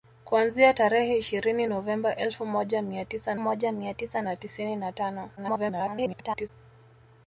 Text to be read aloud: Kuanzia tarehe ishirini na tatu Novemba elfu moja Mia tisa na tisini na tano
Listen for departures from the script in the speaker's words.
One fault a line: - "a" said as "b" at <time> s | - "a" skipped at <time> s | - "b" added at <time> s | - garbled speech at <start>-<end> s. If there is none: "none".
- "na tatu Novemba elfu" said as "Novemba elfu moja Mia tisa" at 1.6 s
- garbled speech at 5.4-6.5 s